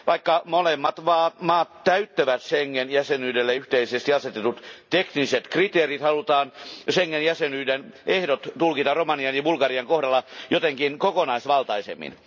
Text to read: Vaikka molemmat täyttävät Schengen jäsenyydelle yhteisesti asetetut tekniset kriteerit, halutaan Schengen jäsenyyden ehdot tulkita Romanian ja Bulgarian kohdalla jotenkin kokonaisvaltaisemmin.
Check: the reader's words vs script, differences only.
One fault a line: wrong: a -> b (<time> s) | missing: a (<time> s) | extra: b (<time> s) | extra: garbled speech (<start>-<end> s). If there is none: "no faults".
extra: maat (1.4 s)